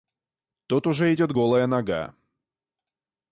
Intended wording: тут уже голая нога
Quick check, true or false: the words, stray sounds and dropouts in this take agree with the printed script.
false